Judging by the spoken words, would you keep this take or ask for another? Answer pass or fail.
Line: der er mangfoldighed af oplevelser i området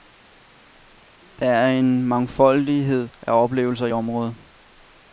fail